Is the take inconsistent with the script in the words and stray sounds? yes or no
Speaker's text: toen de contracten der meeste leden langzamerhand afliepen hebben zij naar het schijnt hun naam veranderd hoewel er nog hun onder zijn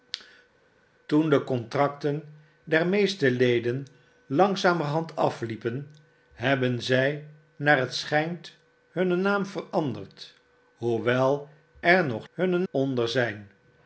no